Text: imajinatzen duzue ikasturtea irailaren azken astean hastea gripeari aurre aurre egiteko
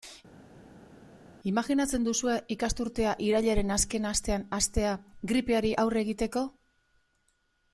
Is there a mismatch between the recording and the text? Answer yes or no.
yes